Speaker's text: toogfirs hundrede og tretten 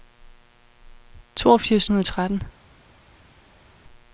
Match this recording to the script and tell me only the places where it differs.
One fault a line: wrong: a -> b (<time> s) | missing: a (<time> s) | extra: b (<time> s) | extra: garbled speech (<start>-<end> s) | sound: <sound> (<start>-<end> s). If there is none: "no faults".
no faults